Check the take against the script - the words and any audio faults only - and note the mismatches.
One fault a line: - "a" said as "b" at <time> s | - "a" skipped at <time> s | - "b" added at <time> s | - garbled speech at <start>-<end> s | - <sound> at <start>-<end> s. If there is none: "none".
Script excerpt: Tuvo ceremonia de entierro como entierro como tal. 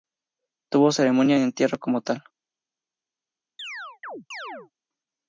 - "entierro como" skipped at 2.0 s
- chirp at 3.6-4.7 s